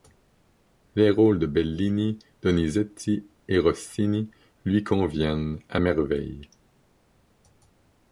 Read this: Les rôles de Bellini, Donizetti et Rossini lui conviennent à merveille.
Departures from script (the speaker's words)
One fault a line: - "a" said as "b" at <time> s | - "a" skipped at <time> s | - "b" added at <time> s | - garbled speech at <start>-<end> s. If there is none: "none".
none